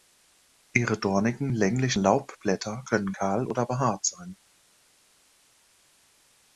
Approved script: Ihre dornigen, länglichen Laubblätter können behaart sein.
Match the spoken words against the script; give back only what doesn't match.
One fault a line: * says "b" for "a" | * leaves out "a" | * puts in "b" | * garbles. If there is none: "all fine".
* puts in "kahl oder"